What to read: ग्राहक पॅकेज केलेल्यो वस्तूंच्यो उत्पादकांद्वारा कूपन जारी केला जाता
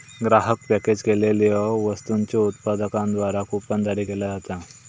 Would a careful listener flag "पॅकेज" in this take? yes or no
no